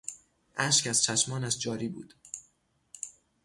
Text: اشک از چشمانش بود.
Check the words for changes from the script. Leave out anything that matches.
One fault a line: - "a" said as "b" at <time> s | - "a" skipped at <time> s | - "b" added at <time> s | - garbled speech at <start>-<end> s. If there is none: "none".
- "جاری" added at 1.6 s